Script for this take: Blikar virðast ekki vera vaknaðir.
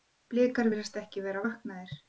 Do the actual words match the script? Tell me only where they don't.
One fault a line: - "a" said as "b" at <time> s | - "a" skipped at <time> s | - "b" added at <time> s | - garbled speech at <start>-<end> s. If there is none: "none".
none